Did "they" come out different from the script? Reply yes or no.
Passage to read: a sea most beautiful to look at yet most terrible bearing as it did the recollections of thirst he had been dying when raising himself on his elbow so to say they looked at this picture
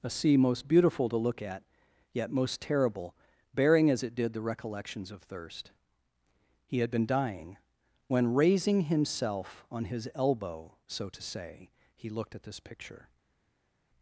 yes